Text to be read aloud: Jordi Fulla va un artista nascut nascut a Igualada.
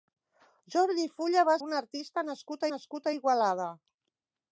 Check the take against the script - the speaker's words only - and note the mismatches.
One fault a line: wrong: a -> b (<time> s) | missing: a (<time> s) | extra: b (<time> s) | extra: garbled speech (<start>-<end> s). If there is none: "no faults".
no faults